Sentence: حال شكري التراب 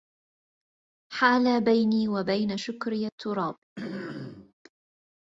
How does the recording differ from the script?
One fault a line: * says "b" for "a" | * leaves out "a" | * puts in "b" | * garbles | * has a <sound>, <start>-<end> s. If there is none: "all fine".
* puts in "بيني وبين"
* has a throat clearing, 3.8-4.5 s